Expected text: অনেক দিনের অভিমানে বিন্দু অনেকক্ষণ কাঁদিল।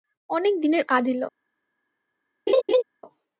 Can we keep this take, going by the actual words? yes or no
no